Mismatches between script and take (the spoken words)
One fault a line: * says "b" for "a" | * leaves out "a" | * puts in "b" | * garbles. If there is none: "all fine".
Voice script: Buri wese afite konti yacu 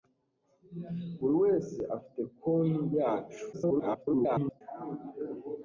* garbles